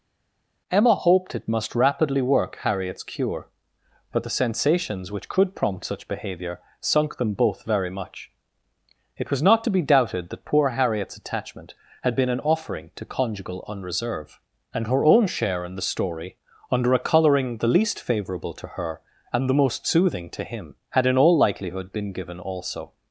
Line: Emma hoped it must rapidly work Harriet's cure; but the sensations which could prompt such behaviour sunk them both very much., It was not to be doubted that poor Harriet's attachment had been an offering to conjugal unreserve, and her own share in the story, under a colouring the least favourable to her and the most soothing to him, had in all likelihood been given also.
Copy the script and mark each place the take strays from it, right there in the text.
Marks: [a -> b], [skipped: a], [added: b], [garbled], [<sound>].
Emma hoped it must rapidly work Harriet's cure; but the sensations which could prompt such behaviour sunk them both very much., It was not to be doubted that poor Harriet's attachment had been an offering to conjugal unreserve, and her own share in the story, under a colouring the least favourable to her and the most soothing to him, had in all likelihood been given also.